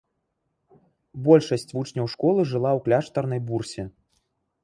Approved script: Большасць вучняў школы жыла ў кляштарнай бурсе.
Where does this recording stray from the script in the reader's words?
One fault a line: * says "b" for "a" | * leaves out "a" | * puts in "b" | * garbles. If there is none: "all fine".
all fine